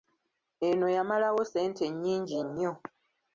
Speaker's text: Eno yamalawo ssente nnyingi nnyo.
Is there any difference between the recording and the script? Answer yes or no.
no